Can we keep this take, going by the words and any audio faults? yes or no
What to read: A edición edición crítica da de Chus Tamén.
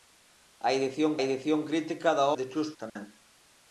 no